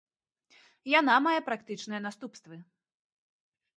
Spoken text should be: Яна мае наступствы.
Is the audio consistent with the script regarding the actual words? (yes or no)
no